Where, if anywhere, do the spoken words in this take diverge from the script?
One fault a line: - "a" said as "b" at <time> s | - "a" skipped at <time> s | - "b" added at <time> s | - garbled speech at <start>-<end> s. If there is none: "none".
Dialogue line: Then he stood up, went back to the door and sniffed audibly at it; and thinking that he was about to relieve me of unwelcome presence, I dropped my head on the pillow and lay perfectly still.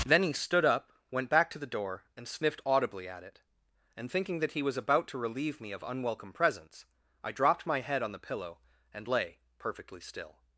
none